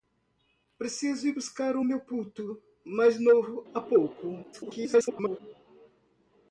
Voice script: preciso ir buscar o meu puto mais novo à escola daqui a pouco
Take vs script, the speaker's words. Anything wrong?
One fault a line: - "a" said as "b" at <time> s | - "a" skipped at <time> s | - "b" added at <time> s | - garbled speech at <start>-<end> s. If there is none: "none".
- "à escola daqui" skipped at 3.7 s
- garbled speech at 4.5-5.4 s